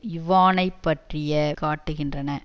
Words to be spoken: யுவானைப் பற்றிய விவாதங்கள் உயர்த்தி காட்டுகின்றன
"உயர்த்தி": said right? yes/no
no